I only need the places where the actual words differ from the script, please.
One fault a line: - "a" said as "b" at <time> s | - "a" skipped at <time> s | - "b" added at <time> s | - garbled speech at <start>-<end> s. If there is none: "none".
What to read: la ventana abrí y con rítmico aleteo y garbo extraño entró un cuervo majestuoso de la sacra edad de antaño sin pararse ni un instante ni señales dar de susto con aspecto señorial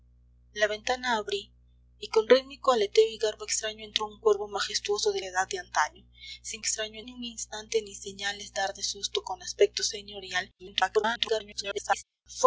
- "la sacra" skipped at 5.2 s
- "pararse" said as "extraño" at 6.6 s
- garbled speech at 10.6-12.0 s